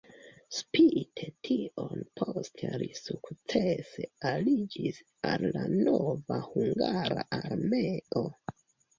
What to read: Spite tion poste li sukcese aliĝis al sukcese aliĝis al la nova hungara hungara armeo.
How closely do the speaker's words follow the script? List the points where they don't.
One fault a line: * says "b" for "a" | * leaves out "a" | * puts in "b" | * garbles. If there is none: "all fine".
* leaves out "sukcese aliĝis al"
* leaves out "hungara"